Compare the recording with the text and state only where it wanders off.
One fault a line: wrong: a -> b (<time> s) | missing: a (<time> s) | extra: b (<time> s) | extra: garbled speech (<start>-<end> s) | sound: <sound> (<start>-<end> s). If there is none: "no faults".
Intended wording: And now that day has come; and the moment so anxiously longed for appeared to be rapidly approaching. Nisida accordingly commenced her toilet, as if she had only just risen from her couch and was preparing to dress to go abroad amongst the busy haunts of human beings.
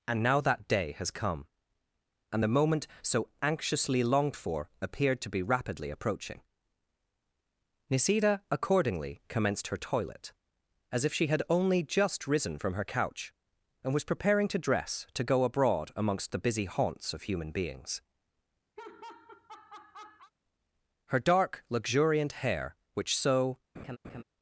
sound: laugh (18.8-20.3 s)
extra: Her dark luxuriant hair which so (21.1 s)
sound: laugh (23.7-24.2 s)